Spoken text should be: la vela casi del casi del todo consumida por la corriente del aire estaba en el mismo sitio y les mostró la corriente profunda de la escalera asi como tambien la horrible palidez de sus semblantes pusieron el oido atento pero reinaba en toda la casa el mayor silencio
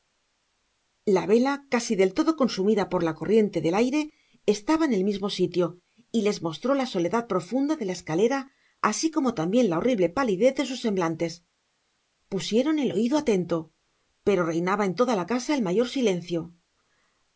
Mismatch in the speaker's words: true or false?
true